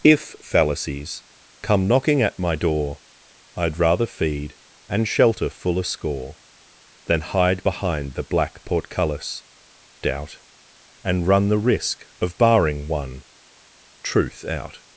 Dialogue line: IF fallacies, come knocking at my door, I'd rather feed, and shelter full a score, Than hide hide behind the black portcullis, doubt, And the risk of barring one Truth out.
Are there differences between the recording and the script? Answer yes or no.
yes